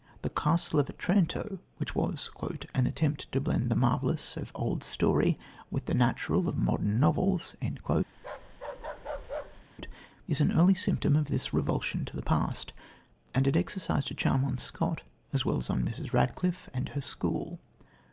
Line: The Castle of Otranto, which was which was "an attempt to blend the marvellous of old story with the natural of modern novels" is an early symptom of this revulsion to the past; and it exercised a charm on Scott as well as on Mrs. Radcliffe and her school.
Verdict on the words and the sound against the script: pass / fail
fail